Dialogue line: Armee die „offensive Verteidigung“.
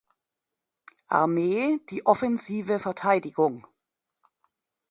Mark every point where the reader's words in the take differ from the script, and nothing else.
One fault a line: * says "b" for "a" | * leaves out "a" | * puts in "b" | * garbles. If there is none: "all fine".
all fine